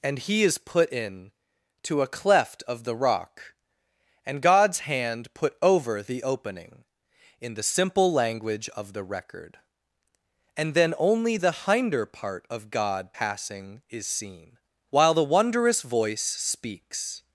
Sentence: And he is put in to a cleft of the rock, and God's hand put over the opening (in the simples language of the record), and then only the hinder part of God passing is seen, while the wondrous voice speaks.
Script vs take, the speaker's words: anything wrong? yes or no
yes